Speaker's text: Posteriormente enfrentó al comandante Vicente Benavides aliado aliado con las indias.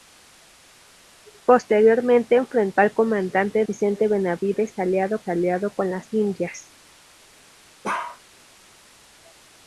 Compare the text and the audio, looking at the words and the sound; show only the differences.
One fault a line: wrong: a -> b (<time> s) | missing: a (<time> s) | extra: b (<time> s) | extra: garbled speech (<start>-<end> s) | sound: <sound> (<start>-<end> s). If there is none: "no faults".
sound: bark (7.8-8.2 s)